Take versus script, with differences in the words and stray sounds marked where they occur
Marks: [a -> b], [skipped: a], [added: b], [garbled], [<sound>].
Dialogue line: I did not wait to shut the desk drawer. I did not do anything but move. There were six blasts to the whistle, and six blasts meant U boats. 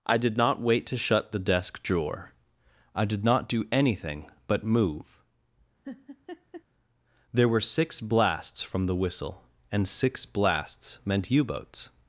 I did not wait to shut the desk drawer. I did not do anything but move. [laugh] There were six blasts [to -> from] the whistle, and six blasts meant U boats.